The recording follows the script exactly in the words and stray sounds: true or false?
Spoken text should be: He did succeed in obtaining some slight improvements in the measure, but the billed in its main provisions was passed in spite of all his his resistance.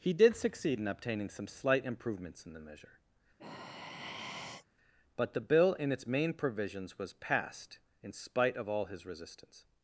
false